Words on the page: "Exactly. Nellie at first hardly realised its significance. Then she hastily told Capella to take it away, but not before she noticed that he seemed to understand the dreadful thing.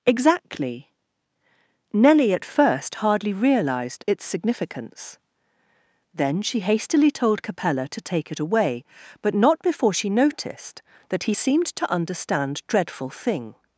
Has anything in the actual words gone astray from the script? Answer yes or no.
yes